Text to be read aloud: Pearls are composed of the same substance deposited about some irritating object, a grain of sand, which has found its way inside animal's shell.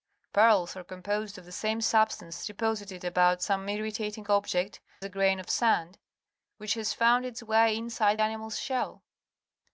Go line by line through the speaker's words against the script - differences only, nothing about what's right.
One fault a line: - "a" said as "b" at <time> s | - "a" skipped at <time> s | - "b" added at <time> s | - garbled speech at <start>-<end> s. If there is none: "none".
none